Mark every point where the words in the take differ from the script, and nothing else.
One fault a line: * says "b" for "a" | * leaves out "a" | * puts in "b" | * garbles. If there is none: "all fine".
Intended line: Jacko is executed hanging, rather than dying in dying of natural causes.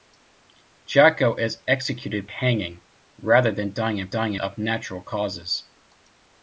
all fine